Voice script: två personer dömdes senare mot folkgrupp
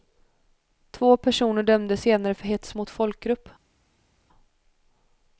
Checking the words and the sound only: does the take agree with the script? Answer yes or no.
no